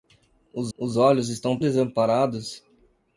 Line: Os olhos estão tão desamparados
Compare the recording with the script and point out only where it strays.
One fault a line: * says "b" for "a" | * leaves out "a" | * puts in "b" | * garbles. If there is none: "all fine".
* puts in "os"
* leaves out "tão"